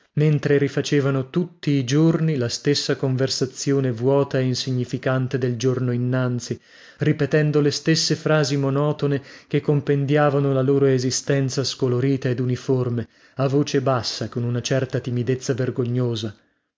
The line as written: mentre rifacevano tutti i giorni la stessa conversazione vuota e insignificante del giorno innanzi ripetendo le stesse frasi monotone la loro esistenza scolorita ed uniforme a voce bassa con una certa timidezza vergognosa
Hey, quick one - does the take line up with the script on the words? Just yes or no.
no